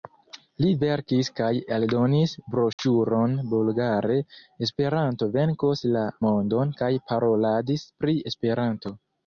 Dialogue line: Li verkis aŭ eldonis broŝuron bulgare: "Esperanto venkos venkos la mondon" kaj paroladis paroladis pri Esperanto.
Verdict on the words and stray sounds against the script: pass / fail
fail